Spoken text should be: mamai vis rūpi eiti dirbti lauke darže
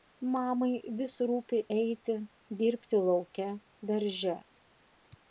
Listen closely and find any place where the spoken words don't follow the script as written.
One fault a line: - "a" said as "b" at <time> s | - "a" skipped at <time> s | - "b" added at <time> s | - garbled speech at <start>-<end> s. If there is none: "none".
none